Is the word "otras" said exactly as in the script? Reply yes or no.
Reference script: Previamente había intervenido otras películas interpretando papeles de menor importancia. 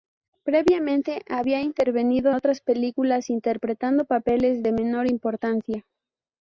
yes